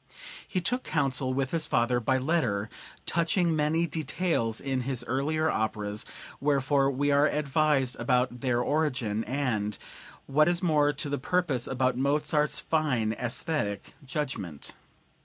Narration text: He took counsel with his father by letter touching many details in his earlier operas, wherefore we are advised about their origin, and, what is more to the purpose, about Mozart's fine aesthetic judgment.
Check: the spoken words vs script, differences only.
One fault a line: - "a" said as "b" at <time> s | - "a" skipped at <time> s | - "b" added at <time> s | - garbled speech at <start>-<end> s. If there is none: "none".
none